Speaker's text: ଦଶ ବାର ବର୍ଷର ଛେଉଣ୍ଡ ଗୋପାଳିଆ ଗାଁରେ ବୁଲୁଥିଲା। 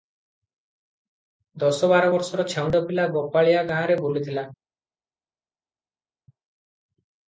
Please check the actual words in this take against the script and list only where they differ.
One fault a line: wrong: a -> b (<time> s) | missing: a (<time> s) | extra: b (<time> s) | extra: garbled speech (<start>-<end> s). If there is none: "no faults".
extra: ପିଲା (2.9 s)